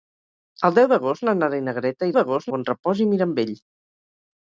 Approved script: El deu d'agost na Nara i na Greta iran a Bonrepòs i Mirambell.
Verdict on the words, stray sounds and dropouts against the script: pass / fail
fail